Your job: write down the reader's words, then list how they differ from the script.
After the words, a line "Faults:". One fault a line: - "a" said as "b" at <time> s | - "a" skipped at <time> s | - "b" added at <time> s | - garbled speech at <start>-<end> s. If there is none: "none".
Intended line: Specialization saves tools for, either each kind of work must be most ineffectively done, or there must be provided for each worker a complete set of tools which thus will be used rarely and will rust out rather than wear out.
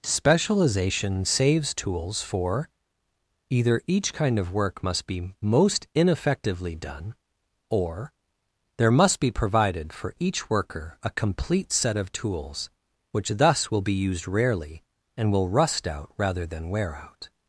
Specialization saves tools for, either each kind of work must be most ineffectively done, or there must be provided for each worker a complete set of tools which thus will be used rarely and will rust out rather than wear out.
Faults:
none